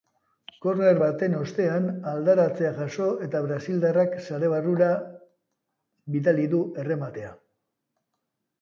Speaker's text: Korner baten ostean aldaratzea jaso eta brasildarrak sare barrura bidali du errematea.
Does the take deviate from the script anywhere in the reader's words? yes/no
no